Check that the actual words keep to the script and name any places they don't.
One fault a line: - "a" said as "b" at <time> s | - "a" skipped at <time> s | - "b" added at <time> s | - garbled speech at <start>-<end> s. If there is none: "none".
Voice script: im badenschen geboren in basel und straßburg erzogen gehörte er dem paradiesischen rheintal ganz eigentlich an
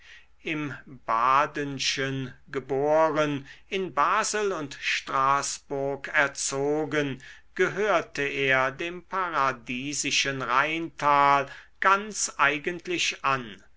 none